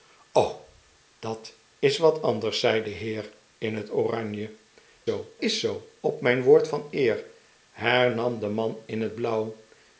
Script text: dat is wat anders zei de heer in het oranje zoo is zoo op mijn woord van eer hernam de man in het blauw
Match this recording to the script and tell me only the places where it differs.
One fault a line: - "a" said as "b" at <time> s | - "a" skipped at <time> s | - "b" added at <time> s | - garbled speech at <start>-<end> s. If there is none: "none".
none